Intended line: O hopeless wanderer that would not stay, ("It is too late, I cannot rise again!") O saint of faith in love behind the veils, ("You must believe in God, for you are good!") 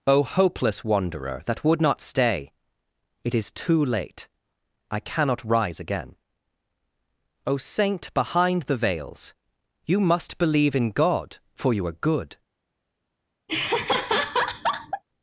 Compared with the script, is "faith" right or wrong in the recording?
wrong